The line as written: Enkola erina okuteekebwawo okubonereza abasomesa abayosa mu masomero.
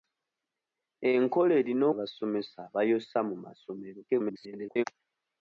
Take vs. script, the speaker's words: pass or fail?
fail